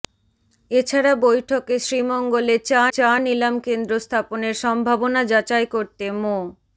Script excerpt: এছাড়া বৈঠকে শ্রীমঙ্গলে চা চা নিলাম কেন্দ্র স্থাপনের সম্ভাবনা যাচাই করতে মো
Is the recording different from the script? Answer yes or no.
no